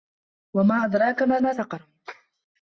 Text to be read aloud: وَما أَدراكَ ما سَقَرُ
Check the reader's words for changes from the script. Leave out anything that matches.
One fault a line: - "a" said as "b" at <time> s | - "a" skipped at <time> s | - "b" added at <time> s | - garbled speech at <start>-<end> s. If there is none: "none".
- "ما" added at 1.4 s